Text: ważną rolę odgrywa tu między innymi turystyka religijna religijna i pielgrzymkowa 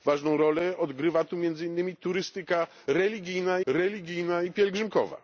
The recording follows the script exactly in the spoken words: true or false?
true